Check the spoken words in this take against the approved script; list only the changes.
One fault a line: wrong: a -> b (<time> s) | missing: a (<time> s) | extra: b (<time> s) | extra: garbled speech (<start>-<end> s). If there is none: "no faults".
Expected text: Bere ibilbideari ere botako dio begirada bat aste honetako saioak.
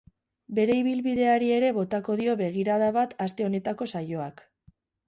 no faults